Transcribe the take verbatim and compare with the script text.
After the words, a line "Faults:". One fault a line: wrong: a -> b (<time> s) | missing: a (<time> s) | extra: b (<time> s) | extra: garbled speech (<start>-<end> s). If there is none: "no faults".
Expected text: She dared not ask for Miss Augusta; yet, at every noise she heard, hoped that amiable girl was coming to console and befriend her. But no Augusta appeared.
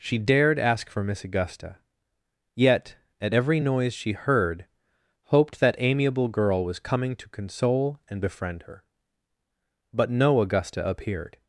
She dared ask for Miss Augusta; yet, at every noise she heard, hoped that amiable girl was coming to console and befriend her. But no Augusta appeared.
Faults:
missing: not (0.6 s)